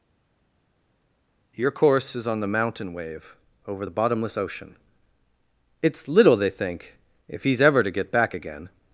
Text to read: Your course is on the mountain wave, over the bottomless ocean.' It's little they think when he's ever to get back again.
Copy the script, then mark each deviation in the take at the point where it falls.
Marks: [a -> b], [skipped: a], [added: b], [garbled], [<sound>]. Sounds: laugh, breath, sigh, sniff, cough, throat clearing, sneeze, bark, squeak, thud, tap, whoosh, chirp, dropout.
Your course is on the mountain wave, over the bottomless ocean.' It's little they think [when -> if] he's ever to get back again.